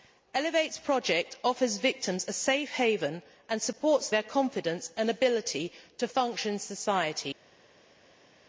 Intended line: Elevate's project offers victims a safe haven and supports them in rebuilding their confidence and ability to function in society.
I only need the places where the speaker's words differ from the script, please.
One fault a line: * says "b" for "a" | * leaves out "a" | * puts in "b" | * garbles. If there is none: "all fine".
* leaves out "them in rebuilding"